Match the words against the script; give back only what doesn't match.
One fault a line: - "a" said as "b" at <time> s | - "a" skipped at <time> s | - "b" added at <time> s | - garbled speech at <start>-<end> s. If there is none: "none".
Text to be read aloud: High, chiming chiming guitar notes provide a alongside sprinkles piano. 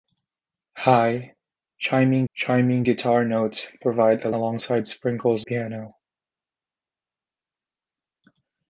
none